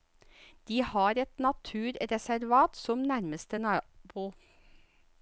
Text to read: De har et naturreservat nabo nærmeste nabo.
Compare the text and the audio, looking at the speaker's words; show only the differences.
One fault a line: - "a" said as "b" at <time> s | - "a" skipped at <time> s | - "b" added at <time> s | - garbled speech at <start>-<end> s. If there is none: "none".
- "nabo" said as "som" at 2.8 s